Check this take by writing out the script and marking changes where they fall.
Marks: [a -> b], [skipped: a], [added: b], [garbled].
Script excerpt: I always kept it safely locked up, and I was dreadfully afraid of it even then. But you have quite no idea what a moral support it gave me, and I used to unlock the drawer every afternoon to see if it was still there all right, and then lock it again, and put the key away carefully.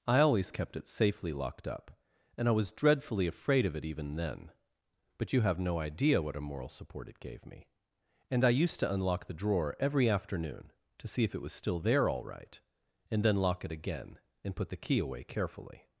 I always kept it safely locked up, and I was dreadfully afraid of it even then. But you have [skipped: quite] no idea what a moral support it gave me, and I used to unlock the drawer every afternoon to see if it was still there all right, and then lock it again, and put the key away carefully.